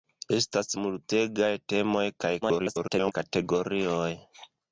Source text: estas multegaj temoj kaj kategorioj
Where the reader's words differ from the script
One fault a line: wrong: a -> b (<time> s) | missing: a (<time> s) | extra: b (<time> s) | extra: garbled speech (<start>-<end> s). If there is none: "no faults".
extra: garbled speech (2.4-3.1 s)